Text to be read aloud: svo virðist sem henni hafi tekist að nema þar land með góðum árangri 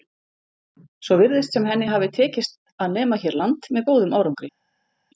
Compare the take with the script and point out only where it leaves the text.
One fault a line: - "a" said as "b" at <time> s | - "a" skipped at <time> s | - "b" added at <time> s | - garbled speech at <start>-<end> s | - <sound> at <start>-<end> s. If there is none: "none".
- "þar" said as "hér" at 3.2 s